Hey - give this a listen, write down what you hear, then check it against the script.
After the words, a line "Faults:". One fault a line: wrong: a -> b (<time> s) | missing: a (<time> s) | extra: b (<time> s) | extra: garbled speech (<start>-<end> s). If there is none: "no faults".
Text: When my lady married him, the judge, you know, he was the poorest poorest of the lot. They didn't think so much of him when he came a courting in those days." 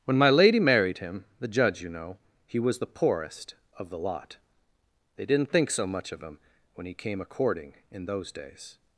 When my lady married him, the judge, you know, he was the poorest of the lot. They didn't think so much of him when he came a courting in those days."
Faults:
missing: poorest (3.5 s)